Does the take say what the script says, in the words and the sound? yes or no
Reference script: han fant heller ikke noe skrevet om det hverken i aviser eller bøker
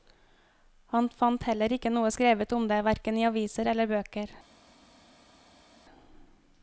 yes